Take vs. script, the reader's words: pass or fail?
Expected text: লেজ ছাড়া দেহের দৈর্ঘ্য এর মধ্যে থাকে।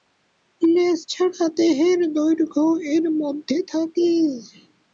pass